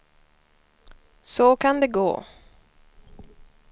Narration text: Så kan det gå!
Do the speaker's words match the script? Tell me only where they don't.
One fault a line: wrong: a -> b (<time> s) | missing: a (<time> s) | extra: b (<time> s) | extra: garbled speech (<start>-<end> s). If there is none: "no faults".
no faults